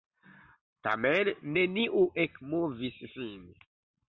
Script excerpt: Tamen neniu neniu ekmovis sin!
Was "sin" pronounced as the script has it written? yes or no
yes